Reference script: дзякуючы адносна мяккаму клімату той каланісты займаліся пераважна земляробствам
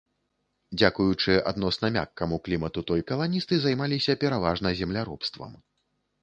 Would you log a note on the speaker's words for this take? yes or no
no